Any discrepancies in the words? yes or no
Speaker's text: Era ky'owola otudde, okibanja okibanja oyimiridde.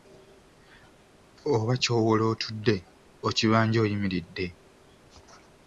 yes